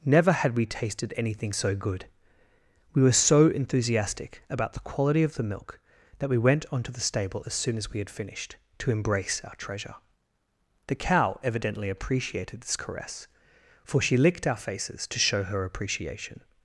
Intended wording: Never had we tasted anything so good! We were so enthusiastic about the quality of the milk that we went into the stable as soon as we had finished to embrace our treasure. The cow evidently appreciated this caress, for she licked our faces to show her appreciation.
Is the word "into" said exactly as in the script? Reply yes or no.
no